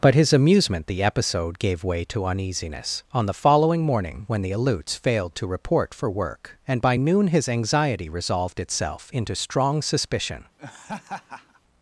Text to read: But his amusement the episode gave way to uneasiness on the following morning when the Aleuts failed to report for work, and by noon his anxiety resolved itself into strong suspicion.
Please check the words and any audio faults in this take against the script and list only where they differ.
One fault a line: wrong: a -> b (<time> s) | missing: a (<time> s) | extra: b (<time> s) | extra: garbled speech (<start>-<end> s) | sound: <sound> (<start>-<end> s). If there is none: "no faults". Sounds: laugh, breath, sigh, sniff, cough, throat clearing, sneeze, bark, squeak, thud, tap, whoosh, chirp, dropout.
sound: laugh (10.6-11.6 s)